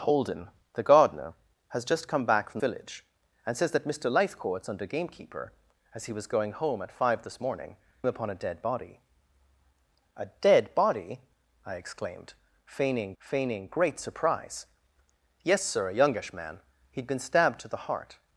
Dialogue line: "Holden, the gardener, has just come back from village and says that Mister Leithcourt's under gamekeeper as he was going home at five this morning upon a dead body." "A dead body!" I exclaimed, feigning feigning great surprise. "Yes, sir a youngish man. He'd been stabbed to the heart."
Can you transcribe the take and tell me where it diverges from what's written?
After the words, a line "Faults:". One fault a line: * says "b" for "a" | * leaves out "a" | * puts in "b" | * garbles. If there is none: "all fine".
"Holden, the gardener, has just come back from village and says that Mister Leithcourt's under gamekeeper as he was going home at five this morning upon a dead body." "A dead body!" I exclaimed, feigning feigning great surprise. "Yes, sir a youngish man. He'd been stabbed to the heart."
Faults:
all fine